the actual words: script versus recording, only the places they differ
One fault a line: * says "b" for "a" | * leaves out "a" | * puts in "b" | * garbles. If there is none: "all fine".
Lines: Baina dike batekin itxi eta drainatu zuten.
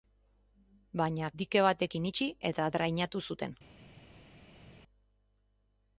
all fine